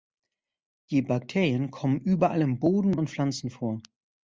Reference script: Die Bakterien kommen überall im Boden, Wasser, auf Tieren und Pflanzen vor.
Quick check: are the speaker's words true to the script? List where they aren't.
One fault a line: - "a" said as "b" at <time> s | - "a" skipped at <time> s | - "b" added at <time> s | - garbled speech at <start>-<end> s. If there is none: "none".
- "Wasser auf Tieren" skipped at 3.0 s